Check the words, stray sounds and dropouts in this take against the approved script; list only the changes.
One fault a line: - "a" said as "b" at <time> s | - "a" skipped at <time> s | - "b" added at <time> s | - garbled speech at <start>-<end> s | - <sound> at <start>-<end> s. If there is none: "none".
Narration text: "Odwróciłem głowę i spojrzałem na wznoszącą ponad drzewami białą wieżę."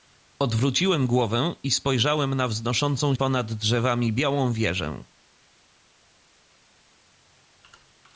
none